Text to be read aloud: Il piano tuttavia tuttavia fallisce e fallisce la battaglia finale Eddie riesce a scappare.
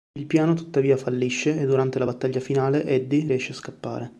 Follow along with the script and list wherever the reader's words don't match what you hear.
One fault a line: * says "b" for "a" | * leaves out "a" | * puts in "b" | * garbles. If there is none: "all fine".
* leaves out "tuttavia"
* says "durante" for "fallisce"